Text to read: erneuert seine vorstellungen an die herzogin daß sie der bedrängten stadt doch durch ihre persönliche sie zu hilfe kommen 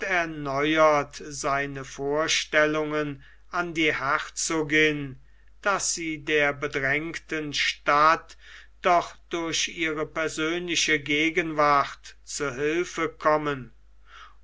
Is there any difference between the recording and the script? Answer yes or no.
yes